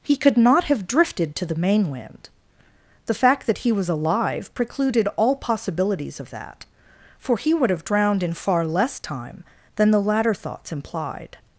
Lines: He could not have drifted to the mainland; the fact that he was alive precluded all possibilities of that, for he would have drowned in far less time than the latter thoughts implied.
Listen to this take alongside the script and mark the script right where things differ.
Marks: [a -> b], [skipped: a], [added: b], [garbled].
He could not have drifted to the mainland; the fact that he was alive precluded all possibilities of that, for he would have drowned in far less time than the latter thoughts implied.